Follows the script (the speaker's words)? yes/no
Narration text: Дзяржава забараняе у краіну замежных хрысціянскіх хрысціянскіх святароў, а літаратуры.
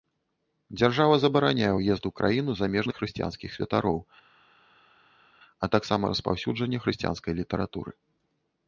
no